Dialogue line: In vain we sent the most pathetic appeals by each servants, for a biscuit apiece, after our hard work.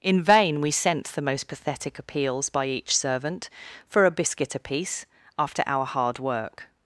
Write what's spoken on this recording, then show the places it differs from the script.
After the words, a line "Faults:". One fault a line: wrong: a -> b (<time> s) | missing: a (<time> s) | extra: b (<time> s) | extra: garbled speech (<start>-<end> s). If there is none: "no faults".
In vain we sent the most pathetic appeals by each servant, for a biscuit apiece, after our hard work.
Faults:
wrong: servants -> servant (3.0 s)